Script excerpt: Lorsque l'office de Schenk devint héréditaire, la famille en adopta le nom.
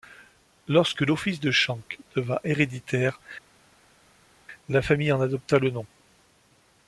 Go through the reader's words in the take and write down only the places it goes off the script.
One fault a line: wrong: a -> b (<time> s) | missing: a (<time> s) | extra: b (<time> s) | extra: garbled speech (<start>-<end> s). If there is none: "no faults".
no faults